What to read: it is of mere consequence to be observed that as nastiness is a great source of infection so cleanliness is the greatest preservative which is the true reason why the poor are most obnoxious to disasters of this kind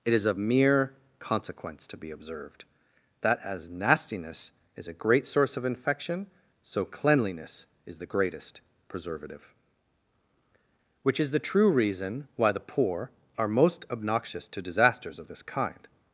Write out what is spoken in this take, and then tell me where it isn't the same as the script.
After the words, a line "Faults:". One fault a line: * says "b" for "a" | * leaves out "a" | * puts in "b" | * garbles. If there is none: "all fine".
it is of mere consequence to be observed that as nastiness is a great source of infection so cleanliness is the greatest preservative which is the true reason why the poor are most obnoxious to disasters of this kind
Faults:
all fine